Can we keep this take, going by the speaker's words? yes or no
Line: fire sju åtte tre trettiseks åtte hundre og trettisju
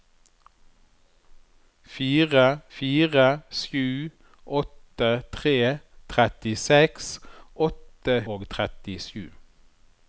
no